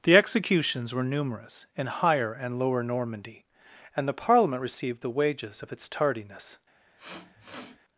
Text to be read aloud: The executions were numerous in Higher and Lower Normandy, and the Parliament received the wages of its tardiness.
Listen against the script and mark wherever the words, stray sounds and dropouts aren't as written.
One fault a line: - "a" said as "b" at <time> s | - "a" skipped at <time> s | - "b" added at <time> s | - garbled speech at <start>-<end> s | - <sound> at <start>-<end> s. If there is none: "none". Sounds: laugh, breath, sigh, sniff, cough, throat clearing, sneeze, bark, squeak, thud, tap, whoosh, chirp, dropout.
- sniff at 7.0-7.8 s